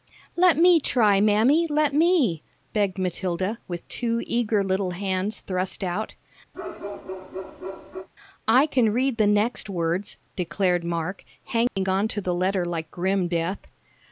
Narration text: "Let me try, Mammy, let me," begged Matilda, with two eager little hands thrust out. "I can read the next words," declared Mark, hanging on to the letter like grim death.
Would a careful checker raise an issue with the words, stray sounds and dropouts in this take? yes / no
yes